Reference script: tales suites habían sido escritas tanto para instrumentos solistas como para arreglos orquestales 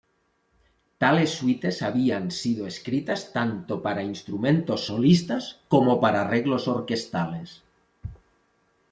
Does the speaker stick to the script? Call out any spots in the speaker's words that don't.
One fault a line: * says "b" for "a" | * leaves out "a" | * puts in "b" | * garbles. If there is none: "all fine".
all fine